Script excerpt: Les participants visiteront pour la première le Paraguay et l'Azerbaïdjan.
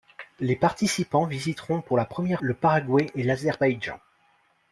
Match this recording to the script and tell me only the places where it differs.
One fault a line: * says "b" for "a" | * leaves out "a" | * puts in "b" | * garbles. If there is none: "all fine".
all fine